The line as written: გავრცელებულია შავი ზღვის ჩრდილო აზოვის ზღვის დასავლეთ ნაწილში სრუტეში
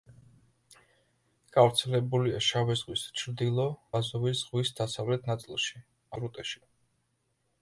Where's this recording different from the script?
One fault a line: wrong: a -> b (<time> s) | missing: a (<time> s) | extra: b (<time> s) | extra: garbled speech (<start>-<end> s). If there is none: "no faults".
no faults